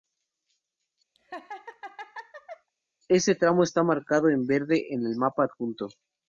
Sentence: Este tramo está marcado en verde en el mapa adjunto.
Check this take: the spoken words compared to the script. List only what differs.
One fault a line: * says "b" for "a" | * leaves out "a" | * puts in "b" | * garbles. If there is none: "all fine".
all fine